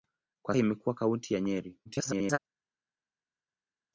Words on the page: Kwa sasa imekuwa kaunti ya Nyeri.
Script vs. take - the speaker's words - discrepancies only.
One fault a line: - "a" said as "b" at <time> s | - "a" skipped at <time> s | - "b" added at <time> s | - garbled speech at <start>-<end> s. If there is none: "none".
- "sasa" skipped at 0.6 s
- garbled speech at 1.9-2.4 s